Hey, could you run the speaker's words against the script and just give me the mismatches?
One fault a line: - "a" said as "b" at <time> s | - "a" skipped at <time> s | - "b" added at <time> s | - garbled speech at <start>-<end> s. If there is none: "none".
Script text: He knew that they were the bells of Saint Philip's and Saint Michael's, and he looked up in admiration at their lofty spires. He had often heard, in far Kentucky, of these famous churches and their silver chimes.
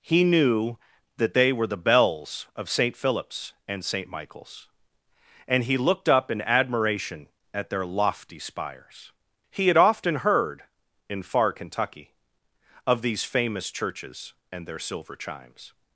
none